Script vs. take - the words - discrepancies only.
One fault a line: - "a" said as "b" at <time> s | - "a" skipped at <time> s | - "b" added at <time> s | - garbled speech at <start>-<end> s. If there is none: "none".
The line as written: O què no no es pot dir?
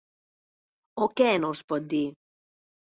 - "no" skipped at 1.5 s